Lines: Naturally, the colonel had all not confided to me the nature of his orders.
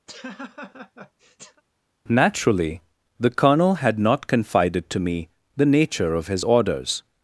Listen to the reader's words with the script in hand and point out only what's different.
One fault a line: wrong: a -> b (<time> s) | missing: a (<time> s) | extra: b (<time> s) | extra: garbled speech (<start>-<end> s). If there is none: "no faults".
missing: all (4.0 s)